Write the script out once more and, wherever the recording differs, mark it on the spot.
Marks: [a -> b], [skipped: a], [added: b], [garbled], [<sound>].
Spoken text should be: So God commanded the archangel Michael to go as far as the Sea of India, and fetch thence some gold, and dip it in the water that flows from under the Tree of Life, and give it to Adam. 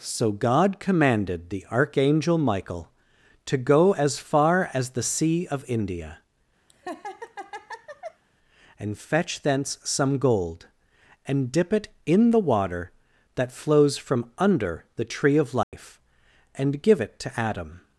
So God commanded the archangel Michael to go as far as the Sea of India, [laugh] and fetch thence some gold, and dip it in the water that flows from under the Tree of Life, [dropout] and give it to Adam.